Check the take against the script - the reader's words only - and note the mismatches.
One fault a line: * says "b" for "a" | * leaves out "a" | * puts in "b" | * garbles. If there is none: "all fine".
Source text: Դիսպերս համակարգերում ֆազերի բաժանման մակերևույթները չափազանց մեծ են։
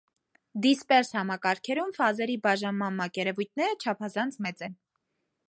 all fine